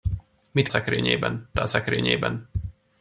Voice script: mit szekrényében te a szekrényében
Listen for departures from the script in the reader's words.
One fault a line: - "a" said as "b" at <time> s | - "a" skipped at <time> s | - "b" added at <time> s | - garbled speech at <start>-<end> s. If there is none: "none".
none